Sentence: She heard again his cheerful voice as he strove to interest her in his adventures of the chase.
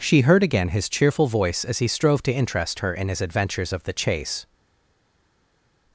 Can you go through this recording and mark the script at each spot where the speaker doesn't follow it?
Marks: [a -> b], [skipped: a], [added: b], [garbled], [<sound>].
She heard again his cheerful voice as he strove to interest her in his adventures of the chase.